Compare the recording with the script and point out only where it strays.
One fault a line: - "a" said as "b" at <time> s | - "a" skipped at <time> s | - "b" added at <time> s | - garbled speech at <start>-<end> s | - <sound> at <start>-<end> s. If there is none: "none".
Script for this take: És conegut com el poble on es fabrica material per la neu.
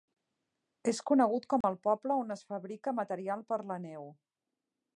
- dropout at 1.6-1.6 s